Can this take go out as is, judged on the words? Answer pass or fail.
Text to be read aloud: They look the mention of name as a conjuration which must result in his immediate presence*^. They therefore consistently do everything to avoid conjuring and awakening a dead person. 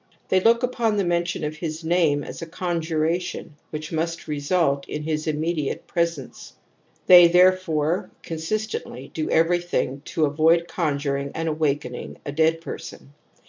fail